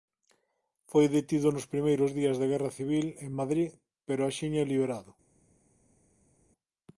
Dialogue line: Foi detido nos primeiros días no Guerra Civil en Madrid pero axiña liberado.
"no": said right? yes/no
no